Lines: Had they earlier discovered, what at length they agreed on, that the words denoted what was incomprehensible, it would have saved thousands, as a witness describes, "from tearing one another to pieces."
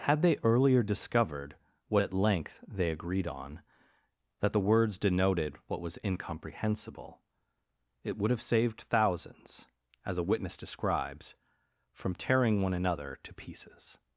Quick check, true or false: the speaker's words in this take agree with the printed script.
true